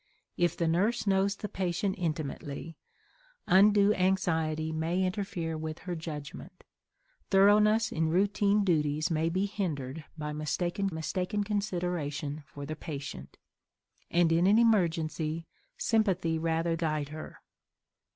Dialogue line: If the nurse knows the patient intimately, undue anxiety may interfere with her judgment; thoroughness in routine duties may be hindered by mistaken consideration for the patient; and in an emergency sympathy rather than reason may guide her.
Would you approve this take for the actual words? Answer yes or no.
no